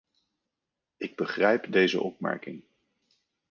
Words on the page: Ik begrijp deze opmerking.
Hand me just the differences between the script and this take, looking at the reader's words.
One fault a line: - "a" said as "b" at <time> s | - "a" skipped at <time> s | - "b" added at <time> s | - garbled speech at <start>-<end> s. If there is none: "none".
none